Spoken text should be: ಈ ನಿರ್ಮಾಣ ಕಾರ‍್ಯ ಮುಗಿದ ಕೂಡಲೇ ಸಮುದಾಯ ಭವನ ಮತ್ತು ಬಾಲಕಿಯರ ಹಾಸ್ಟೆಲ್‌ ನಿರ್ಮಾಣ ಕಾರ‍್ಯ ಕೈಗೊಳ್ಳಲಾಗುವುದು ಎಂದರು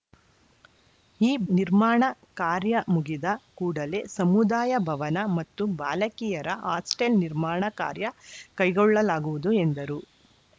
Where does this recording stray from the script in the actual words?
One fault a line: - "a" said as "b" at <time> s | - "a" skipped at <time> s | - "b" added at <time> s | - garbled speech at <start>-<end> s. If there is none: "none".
none